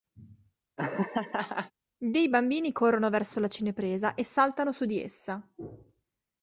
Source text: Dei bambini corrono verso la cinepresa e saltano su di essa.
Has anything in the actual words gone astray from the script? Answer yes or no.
no